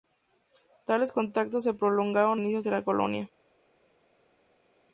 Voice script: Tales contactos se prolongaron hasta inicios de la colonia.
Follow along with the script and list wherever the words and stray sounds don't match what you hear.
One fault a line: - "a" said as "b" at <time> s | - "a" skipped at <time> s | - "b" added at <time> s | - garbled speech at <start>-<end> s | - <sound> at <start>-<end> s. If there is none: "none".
- "hasta" skipped at 2.4 s